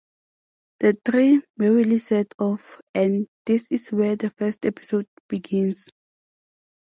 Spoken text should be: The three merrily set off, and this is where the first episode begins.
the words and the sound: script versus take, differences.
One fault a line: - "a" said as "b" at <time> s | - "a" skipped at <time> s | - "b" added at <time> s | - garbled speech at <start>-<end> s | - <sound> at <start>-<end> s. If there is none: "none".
none